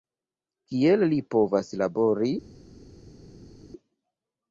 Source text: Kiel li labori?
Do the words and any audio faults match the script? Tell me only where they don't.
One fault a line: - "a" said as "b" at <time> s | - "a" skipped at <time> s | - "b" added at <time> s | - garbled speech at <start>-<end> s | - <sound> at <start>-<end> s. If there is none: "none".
- "povas" added at 1.4 s